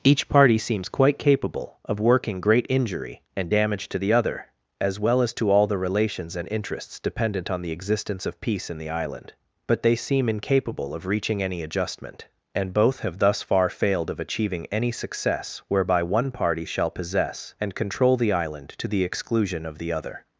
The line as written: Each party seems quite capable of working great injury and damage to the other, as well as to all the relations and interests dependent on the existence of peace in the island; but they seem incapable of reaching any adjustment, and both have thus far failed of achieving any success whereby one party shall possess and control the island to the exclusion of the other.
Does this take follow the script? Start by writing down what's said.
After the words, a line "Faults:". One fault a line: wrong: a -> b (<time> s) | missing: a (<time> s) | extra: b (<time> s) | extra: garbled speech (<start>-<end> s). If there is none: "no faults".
Each party seems quite capable of working great injury and damage to the other, as well as to all the relations and interests dependent on the existence of peace in the island; but they seem incapable of reaching any adjustment, and both have thus far failed of achieving any success whereby one party shall possess and control the island to the exclusion of the other.
Faults:
no faults